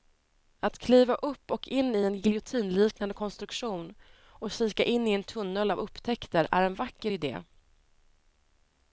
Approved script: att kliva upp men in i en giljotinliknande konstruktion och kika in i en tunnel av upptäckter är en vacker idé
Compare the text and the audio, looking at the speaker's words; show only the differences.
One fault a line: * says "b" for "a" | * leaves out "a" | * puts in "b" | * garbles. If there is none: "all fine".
* says "och" for "men"